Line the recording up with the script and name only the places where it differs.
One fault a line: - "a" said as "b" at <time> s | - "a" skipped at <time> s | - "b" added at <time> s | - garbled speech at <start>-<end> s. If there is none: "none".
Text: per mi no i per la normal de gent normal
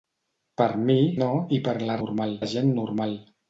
none